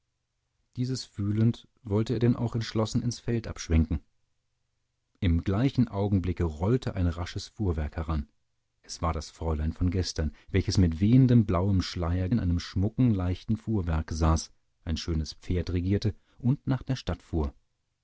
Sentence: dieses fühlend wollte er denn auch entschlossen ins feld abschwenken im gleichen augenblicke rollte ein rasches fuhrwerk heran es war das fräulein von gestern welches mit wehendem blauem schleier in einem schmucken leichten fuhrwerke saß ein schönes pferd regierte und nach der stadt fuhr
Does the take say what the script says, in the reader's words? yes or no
yes